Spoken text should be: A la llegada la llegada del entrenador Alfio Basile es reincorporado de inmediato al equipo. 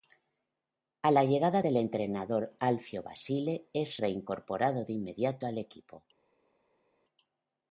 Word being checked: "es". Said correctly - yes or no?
yes